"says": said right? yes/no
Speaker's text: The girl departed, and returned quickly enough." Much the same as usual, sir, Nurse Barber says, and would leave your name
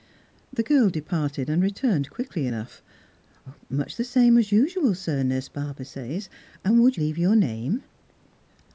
yes